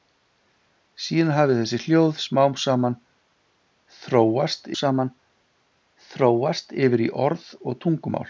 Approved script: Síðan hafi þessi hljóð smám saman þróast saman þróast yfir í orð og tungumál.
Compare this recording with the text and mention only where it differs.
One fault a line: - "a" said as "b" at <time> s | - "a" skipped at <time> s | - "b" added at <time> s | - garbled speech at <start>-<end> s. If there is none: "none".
none